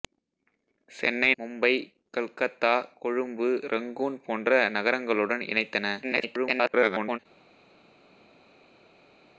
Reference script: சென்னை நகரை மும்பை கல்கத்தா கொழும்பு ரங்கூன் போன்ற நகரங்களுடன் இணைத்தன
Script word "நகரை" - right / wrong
wrong